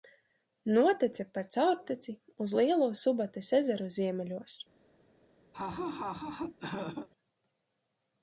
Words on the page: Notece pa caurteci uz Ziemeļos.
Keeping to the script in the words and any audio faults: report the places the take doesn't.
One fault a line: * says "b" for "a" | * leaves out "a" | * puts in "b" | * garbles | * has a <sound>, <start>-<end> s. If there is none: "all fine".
* puts in "Lielo Subates ezeru"
* has a laugh, 5.5-7.1 s